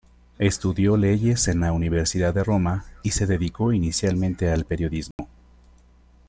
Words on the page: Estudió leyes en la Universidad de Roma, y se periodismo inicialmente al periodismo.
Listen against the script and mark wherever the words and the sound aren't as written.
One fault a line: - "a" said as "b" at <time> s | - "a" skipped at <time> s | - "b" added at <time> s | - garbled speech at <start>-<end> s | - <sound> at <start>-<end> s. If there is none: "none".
- "periodismo" said as "dedicó" at 3.3 s
- dropout at 5.1-5.2 s